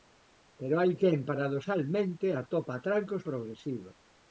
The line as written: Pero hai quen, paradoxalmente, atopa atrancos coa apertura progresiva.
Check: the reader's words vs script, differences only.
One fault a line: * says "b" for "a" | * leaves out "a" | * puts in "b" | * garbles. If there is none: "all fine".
* leaves out "coa apertura"